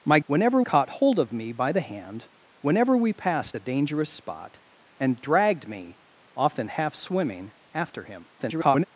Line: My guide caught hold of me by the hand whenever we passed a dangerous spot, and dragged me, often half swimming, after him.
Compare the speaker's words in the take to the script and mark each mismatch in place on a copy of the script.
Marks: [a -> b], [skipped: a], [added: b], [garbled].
My [guide -> whenever] caught hold of me by the hand whenever we passed a dangerous spot, and dragged me, often half swimming, after him. [garbled]